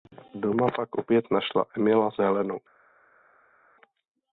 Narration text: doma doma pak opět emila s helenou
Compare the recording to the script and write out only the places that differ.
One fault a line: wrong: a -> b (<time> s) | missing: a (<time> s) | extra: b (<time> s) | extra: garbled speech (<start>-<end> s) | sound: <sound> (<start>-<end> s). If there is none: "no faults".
missing: doma (0.7 s)
extra: našla (1.3 s)